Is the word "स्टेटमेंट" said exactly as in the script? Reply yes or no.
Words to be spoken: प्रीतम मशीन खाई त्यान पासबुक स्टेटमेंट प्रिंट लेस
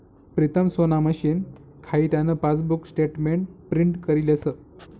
yes